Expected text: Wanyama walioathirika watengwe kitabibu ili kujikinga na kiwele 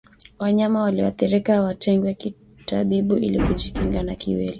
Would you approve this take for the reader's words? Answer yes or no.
yes